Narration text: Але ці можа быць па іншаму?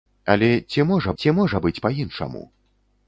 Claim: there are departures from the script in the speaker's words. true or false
true